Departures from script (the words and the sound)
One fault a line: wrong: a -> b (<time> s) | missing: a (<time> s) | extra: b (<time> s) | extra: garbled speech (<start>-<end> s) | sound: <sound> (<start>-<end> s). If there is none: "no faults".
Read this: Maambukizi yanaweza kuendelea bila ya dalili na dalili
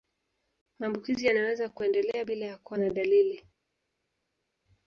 wrong: dalili -> kuwa (2.6 s)